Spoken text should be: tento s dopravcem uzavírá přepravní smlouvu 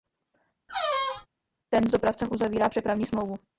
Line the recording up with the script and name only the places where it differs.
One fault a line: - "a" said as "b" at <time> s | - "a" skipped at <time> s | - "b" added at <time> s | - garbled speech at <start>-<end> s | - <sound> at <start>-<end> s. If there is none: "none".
- squeak at 0.7-1.3 s
- "tento" said as "ten" at 1.7 s